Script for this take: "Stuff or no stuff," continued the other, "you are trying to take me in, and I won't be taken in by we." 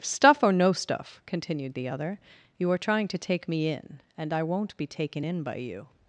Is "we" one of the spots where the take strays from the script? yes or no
yes